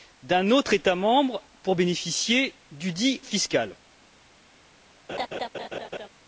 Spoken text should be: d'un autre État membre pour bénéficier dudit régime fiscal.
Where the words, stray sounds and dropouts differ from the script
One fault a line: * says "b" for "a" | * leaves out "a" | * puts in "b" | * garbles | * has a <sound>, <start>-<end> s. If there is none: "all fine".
* leaves out "régime"
* has a laugh, 5.1-6.1 s